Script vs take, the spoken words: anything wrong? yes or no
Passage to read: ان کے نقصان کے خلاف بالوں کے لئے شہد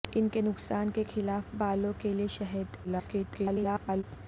yes